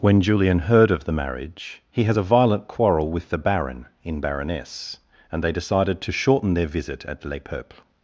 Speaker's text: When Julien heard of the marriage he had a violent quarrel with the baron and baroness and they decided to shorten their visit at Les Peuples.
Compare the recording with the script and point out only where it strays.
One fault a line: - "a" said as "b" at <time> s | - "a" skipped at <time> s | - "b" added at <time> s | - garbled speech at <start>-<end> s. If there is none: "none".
- "had" said as "has" at 2.0 s
- "and" said as "in" at 4.0 s